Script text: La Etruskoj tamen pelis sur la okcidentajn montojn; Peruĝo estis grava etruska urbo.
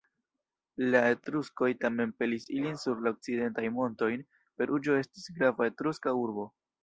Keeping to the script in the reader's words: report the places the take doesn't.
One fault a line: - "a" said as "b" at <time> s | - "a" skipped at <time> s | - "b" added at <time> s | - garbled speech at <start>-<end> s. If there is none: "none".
- "ilin" added at 2.6 s